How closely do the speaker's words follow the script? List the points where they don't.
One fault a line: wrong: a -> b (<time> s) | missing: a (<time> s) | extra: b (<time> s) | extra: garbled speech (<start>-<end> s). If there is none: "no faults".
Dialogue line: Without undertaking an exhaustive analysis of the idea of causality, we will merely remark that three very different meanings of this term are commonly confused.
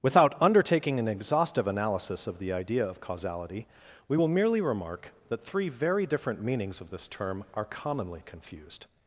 no faults